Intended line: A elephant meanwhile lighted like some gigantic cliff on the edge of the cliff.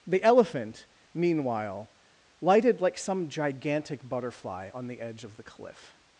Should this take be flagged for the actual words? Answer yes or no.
yes